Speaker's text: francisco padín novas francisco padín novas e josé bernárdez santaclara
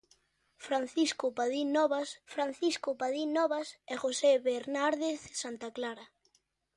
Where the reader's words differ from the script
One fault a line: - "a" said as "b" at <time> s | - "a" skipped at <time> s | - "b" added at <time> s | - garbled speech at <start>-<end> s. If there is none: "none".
none